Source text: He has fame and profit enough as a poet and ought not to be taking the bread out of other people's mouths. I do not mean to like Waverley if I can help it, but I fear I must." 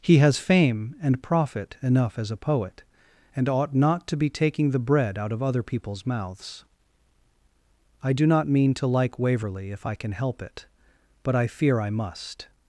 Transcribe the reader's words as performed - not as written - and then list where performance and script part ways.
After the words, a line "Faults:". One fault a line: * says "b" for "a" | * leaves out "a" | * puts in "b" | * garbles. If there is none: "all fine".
He has fame and profit enough as a poet and ought not to be taking the bread out of other people's mouths. I do not mean to like Waverley if I can help it, but I fear I must."
Faults:
all fine